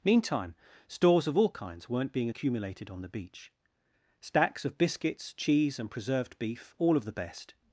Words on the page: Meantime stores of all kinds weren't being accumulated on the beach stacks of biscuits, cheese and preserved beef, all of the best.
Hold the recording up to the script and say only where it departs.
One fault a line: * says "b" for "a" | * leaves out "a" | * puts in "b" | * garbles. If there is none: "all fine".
all fine